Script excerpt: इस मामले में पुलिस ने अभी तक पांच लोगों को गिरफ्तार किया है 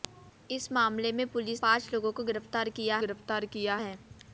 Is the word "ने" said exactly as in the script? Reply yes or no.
no